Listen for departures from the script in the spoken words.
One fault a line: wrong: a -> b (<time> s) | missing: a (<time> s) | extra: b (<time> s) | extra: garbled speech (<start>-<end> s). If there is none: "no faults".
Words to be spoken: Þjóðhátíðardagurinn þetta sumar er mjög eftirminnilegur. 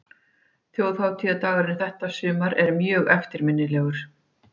no faults